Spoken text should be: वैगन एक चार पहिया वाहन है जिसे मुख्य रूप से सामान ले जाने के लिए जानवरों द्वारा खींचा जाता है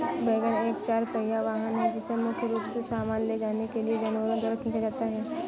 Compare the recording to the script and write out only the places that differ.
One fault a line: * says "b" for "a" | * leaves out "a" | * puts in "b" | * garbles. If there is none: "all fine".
all fine